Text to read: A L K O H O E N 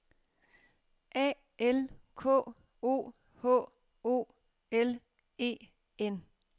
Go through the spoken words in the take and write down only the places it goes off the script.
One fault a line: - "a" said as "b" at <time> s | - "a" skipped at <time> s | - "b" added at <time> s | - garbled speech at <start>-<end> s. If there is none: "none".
- "L" added at 4.7 s